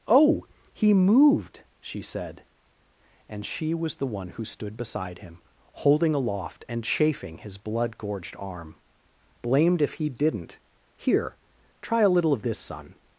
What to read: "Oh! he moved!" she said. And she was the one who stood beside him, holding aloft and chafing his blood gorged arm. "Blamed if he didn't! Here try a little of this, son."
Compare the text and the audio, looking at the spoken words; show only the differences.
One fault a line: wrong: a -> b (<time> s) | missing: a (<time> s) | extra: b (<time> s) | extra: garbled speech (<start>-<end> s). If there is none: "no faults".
no faults